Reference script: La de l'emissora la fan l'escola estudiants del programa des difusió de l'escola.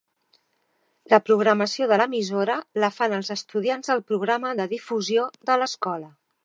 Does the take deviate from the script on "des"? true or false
true